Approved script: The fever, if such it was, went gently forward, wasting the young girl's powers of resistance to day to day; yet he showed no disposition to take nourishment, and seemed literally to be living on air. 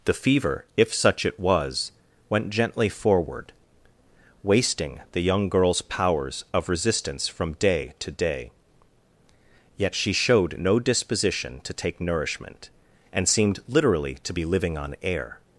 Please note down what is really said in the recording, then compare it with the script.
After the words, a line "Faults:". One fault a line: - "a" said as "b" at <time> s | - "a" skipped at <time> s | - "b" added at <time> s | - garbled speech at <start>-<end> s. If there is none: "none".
The fever, if such it was, went gently forward, wasting the young girl's powers of resistance from day to day; yet she showed no disposition to take nourishment, and seemed literally to be living on air.
Faults:
- "to" said as "from" at 7.3 s
- "he" said as "she" at 9.9 s